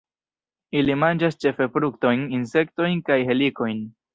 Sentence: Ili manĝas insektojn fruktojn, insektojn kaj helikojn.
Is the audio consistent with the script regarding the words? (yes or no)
no